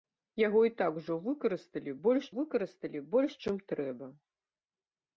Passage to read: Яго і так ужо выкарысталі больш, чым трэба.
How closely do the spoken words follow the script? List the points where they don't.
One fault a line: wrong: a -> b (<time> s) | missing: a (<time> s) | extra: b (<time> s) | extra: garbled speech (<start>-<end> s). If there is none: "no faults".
extra: выкарысталі больш (2.4 s)